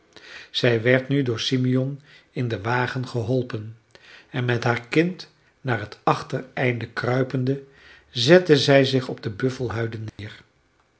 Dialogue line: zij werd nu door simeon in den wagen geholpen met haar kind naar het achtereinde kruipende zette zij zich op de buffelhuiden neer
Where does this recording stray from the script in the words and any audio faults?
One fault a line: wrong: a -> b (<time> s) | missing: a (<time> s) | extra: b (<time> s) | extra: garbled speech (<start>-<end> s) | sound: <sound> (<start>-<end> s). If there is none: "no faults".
extra: en (4.3 s)
sound: dropout (10.1-10.2 s)